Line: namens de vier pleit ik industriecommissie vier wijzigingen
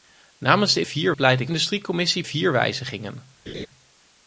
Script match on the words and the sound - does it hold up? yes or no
no